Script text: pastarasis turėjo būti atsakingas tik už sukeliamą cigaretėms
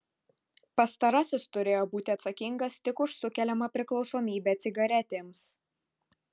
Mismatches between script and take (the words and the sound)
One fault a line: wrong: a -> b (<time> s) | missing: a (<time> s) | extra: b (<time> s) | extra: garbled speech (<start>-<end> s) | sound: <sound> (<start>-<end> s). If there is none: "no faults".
extra: priklausomybę (3.8 s)